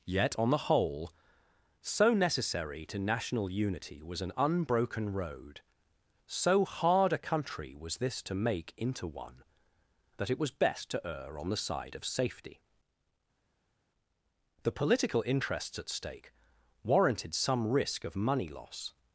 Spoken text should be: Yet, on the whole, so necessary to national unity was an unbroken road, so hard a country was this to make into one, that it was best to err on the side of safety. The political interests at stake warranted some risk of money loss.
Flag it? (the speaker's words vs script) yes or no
no